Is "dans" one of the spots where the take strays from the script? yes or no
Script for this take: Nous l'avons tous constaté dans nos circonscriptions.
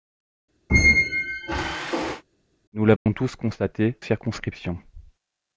yes